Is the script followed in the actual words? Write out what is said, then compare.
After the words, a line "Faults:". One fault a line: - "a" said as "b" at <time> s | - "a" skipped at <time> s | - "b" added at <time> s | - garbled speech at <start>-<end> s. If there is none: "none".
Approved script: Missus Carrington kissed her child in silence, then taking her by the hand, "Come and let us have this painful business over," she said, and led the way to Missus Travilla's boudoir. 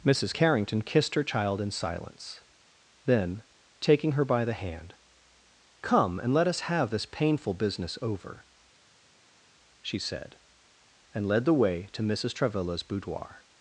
Missus Carrington kissed her child in silence, then taking her by the hand, "Come and let us have this painful business over," she said, and led the way to Missus Travilla's boudoir.
Faults:
none